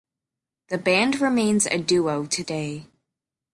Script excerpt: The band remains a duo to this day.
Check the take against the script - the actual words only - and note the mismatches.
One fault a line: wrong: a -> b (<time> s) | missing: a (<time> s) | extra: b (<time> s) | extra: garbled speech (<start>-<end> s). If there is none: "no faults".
missing: this (2.4 s)